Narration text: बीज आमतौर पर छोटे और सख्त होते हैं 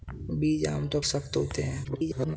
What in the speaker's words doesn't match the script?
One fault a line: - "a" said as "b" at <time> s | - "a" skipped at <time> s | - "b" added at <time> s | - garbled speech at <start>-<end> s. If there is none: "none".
- "पर छोटे और" skipped at 1.0 s
- garbled speech at 1.8-2.4 s